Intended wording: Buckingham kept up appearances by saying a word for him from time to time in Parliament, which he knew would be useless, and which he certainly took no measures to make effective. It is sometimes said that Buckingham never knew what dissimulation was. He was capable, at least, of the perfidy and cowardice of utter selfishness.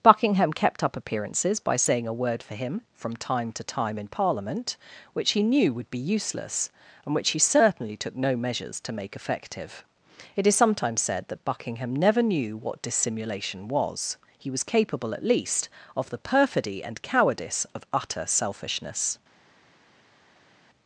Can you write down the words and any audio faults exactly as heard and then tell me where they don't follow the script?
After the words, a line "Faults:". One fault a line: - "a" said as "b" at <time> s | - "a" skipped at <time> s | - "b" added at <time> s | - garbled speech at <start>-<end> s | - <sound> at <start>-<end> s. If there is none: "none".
Buckingham kept up appearances by saying a word for him from time to time in Parliament, which he knew would be useless, and which he certainly took no measures to make effective. It is sometimes said that Buckingham never knew what dissimulation was. He was capable, at least, of the perfidy and cowardice of utter selfishness.
Faults:
none